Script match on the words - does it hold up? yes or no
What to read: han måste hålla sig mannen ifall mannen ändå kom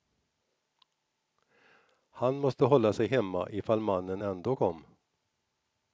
no